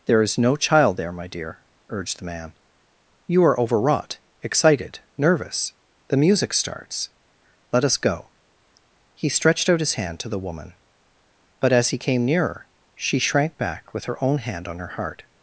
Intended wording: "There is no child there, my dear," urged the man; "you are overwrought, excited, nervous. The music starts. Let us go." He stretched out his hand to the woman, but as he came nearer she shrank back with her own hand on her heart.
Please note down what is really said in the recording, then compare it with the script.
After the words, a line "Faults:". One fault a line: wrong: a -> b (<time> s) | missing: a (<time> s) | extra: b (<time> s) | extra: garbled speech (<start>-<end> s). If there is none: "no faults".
"There is no child there, my dear," urged the man; "you are overwrought, excited, nervous. The music starts. Let us go." He stretched out his hand to the woman, but as he came nearer she shrank back with her own hand on her heart.
Faults:
no faults